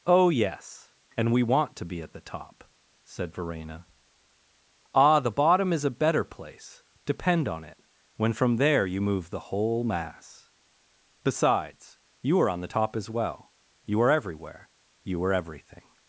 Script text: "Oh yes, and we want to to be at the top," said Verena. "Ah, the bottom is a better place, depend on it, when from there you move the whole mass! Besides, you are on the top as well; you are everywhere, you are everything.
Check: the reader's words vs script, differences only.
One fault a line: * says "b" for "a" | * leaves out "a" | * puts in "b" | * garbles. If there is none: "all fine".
* leaves out "to"